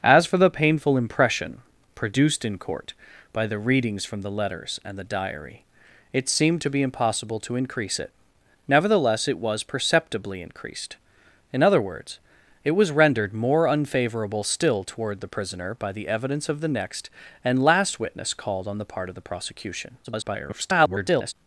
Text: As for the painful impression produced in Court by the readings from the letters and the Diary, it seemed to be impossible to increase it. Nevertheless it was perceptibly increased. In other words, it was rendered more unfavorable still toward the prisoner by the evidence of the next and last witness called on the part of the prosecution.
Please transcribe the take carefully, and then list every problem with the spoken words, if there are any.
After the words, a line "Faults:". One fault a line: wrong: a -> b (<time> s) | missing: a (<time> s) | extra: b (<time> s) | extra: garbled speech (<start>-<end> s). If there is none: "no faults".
As for the painful impression produced in Court by the readings from the letters and the Diary, it seemed to be impossible to increase it. Nevertheless it was perceptibly increased. In other words, it was rendered more unfavorable still toward the prisoner by the evidence of the next and last witness called on the part of the prosecution. [garbled]
Faults:
extra: garbled speech (20.0-21.3 s)